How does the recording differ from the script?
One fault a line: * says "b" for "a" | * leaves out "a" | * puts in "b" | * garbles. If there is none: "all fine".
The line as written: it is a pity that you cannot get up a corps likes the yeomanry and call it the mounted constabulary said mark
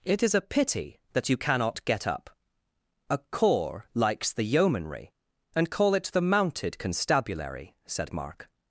all fine